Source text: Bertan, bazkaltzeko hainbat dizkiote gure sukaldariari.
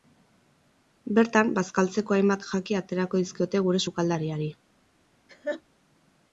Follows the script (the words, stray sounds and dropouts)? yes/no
no